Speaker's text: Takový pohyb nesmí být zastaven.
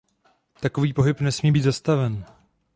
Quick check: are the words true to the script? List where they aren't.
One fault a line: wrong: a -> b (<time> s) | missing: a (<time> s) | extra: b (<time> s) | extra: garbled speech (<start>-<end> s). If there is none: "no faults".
no faults